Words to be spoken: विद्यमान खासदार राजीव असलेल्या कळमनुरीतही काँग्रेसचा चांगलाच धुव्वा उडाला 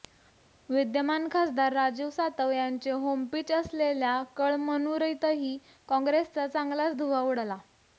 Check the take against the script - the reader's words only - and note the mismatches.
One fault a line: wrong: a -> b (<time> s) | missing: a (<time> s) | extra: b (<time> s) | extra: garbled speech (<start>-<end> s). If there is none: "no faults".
extra: सातव यांचे होमपिच (2.1 s)